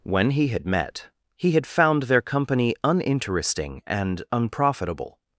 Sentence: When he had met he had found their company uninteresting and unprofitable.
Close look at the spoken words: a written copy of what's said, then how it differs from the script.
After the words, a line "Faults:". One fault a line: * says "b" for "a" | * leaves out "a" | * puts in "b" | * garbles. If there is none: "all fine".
When he had met he had found their company uninteresting and unprofitable.
Faults:
all fine